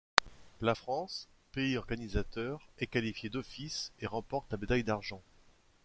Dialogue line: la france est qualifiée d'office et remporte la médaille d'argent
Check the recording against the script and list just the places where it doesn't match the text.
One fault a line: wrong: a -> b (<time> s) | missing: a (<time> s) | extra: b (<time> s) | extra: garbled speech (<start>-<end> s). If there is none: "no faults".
extra: pays organisateur (1.5 s)